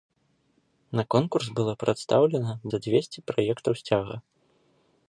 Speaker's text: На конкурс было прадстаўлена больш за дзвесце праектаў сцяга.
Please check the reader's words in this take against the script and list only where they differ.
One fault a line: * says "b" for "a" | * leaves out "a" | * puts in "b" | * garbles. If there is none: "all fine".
* leaves out "больш"